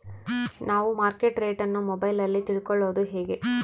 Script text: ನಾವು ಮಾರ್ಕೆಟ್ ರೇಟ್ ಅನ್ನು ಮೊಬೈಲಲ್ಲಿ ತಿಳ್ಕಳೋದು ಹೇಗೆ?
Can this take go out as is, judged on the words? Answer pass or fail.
pass